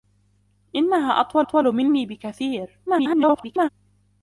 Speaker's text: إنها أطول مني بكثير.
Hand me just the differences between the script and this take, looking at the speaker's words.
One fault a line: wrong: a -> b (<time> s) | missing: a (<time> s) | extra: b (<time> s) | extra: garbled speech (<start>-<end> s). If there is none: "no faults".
extra: أطول (1.4 s)
extra: garbled speech (2.9-3.7 s)